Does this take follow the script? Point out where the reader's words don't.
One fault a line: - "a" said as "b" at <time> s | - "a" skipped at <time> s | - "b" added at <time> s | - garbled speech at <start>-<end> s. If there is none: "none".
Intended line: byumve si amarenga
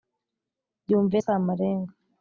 none